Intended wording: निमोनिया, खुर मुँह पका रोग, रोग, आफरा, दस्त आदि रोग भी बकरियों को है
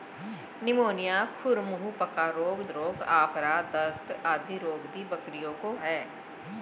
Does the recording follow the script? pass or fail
pass